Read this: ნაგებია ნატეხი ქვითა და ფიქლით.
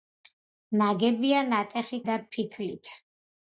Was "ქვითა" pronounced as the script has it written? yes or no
no